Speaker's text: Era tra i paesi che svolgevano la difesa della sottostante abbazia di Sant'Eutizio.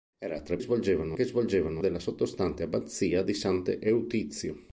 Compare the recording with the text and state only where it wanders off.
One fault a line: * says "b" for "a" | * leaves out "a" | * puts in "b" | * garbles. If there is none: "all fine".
* says "svolgevano" for "paesi"
* leaves out "la difesa"